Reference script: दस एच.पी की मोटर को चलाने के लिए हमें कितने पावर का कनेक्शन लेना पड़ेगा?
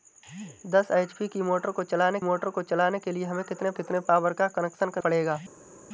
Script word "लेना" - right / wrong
wrong